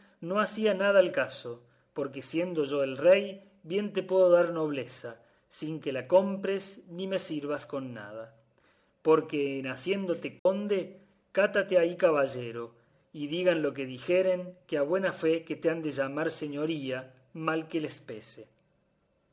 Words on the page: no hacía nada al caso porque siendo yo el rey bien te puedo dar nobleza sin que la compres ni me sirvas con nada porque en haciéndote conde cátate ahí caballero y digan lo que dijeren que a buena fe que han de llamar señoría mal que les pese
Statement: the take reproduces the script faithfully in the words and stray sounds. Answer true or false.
false